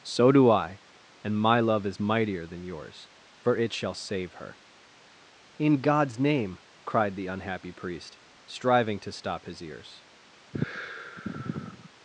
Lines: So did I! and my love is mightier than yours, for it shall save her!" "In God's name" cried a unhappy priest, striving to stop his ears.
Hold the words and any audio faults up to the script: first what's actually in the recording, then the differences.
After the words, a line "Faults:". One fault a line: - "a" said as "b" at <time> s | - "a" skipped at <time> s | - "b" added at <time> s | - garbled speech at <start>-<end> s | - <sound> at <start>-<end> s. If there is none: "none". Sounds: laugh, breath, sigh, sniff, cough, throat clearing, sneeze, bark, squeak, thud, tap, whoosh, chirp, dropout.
So do I! and my love is mightier than yours, for it shall save her!" "In God's name" cried the unhappy priest, striving to stop his ears.
Faults:
- "did" said as "do" at 0.3 s
- "a" said as "the" at 7.2 s
- sigh at 10.5-11.9 s